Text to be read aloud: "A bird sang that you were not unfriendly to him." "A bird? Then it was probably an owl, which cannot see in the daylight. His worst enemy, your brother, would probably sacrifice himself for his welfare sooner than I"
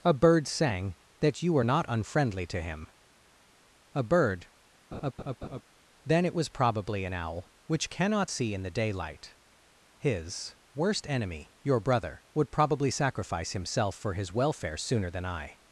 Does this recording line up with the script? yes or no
yes